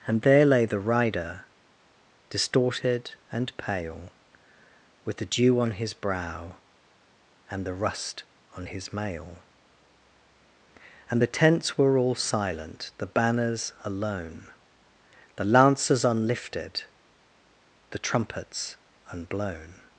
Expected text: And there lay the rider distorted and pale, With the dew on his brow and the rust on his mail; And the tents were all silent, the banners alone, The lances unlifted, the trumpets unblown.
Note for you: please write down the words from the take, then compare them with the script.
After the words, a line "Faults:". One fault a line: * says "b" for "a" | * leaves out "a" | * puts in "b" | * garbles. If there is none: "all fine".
And there lay the rider distorted and pale, With the dew on his brow and the rust on his mail; And the tents were all silent, the banners alone, The lances unlifted, the trumpets unblown.
Faults:
all fine